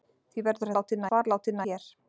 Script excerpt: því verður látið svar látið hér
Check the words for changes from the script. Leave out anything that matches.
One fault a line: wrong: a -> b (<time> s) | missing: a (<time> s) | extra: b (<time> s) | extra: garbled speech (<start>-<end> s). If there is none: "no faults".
no faults